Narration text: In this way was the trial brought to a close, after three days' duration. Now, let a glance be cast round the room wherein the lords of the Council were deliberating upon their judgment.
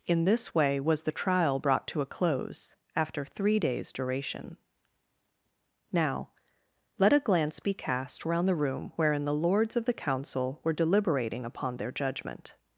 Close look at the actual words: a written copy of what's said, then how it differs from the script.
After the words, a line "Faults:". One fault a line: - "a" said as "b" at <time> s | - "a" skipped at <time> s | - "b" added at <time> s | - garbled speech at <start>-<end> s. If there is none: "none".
In this way was the trial brought to a close, after three days' duration. Now, let a glance be cast round the room wherein the lords of the Council were deliberating upon their judgment.
Faults:
none